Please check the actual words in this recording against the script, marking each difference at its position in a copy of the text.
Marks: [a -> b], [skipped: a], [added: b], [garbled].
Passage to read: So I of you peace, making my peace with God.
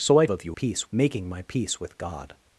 So I of you peace, making my peace with God.